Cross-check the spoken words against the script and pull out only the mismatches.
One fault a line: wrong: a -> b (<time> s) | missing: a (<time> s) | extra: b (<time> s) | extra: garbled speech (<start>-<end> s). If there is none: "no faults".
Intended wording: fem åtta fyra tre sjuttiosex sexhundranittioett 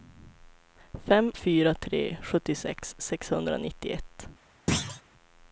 missing: åtta (1.3 s)